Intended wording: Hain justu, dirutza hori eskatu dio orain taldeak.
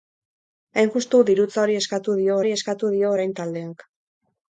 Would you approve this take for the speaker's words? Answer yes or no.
no